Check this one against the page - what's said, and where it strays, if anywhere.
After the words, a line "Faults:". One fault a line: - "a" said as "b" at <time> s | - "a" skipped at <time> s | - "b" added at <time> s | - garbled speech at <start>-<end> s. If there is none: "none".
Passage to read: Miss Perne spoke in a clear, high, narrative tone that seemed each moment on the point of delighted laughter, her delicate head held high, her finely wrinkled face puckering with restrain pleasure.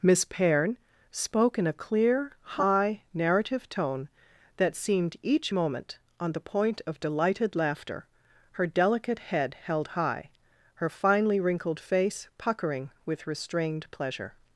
Miss Perne spoke in a clear, high, narrative tone that seemed each moment on the point of delighted laughter, her delicate head held high, her finely wrinkled face puckering with restrained pleasure.
Faults:
- "restrain" said as "restrained" at 13.3 s